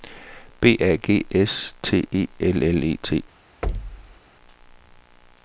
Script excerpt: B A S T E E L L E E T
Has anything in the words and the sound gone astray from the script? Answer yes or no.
yes